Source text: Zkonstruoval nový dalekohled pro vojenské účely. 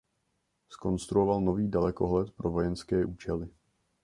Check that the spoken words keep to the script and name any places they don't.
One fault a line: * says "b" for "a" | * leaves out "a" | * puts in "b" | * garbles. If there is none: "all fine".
all fine